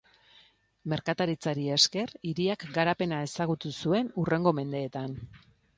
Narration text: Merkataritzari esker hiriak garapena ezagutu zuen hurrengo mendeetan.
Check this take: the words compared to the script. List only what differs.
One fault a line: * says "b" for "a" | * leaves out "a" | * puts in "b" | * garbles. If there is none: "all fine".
all fine